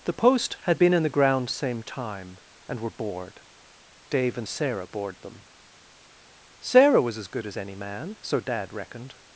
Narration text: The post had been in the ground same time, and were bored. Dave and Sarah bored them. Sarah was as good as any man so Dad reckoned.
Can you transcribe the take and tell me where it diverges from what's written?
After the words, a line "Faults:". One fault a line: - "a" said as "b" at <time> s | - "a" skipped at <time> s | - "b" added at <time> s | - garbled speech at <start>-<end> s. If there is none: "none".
The post had been in the ground same time, and were bored. Dave and Sarah bored them. Sarah was as good as any man so Dad reckoned.
Faults:
none